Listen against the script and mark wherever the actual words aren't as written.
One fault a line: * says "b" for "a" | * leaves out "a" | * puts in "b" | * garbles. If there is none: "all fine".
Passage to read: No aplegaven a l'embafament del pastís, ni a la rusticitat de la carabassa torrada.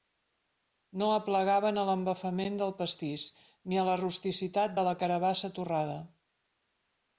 all fine